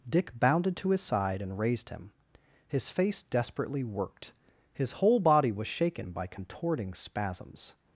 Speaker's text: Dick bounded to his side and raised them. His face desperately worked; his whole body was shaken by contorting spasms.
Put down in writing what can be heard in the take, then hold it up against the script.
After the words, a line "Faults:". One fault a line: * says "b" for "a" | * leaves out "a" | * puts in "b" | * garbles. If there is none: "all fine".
Dick bounded to his side and raised him. His face desperately worked; his whole body was shaken by contorting spasms.
Faults:
* says "him" for "them"